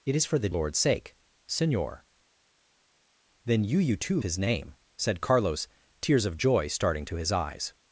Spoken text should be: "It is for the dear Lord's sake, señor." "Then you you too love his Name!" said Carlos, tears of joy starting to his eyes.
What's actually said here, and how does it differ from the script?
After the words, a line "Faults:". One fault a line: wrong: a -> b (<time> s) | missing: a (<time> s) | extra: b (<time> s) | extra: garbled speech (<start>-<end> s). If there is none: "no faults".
"It is for the Lord's sake, señor." "Then you you too his Name!" said Carlos, tears of joy starting to his eyes.
Faults:
missing: dear (0.5 s)
missing: love (4.2 s)